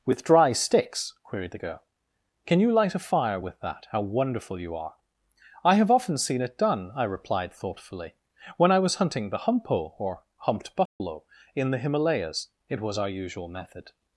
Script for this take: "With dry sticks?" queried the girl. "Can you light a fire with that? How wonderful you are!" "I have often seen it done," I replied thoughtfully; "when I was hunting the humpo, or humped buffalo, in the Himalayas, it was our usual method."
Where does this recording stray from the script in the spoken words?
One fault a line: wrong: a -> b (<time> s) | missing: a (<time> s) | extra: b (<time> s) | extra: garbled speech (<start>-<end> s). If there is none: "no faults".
no faults